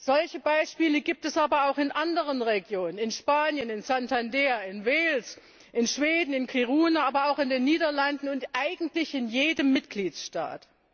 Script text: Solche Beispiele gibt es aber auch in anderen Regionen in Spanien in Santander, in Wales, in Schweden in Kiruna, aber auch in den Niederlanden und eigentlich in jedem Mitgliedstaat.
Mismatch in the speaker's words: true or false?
false